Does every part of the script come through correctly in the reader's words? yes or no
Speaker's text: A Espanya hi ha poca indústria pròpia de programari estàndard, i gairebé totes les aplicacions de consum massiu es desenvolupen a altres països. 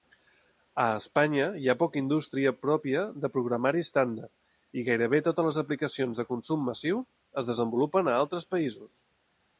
yes